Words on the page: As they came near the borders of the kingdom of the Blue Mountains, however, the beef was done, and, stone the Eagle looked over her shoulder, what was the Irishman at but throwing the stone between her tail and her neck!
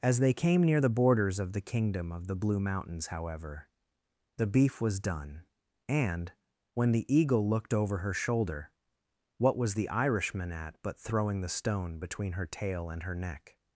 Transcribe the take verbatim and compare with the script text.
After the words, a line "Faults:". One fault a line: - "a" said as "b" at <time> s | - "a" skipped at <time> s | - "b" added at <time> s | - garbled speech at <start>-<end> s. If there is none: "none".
As they came near the borders of the kingdom of the Blue Mountains, however, the beef was done, and, when the Eagle looked over her shoulder, what was the Irishman at but throwing the stone between her tail and her neck!
Faults:
- "stone" said as "when" at 6.7 s